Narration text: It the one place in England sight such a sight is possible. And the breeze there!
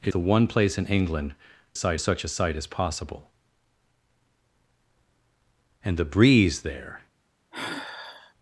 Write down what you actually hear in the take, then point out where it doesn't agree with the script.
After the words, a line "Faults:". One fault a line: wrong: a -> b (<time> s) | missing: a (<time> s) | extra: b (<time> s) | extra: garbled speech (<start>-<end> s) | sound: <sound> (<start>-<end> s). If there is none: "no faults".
It the one place in England sight such a sight is possible. And the breeze there!
Faults:
sound: sigh (7.5-8.3 s)